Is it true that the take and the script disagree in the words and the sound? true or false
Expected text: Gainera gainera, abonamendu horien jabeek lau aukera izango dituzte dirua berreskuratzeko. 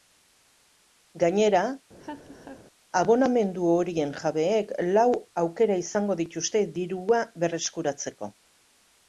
true